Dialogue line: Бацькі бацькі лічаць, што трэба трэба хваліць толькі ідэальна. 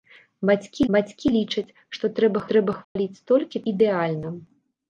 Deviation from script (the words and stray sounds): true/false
true